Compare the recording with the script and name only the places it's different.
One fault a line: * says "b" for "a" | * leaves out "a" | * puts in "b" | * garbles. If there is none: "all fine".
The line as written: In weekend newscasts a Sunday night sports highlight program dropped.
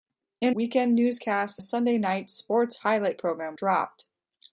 all fine